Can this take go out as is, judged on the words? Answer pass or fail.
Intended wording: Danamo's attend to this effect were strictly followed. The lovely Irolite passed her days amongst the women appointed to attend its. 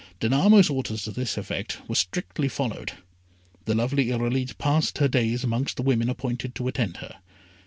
fail